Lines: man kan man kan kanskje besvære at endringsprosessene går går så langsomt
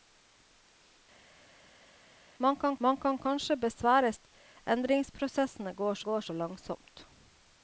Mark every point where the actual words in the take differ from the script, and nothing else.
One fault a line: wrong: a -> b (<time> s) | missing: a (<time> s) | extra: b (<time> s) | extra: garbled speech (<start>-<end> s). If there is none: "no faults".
no faults